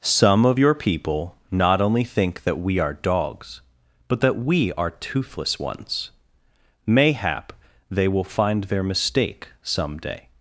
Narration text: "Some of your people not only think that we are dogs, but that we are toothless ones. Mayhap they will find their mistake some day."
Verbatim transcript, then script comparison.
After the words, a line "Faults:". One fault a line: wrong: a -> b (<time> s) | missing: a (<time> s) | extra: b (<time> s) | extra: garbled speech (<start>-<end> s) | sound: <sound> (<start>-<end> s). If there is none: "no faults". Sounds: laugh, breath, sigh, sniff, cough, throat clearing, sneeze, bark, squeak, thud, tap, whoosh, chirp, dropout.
"Some of your people not only think that we are dogs, but that we are toothless ones. Mayhap they will find their mistake some day."
Faults:
no faults